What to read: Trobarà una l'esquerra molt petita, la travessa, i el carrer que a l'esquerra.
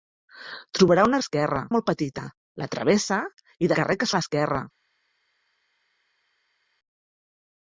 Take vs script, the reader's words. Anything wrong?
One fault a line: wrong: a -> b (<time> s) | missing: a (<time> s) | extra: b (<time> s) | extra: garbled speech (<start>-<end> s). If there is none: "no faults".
no faults